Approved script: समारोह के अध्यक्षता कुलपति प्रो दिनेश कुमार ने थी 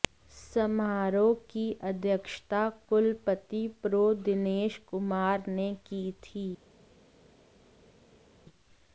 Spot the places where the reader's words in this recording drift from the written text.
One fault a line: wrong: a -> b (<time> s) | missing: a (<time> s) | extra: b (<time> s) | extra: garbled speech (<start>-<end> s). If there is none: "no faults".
wrong: के -> की (1.5 s)
extra: की (5.9 s)